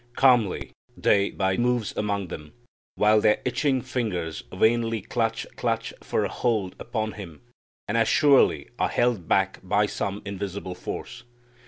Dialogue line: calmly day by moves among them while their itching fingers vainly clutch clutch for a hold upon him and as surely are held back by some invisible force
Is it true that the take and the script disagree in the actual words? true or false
false